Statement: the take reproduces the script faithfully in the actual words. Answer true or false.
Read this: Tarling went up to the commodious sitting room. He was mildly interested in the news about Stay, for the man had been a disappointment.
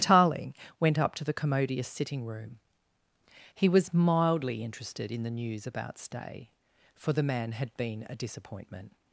true